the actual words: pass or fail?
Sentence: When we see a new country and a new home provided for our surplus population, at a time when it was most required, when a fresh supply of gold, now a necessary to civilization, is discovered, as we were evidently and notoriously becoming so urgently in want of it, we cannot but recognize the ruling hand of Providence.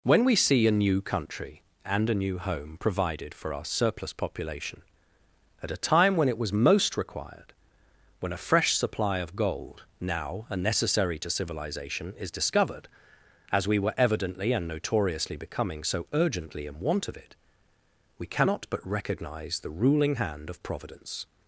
pass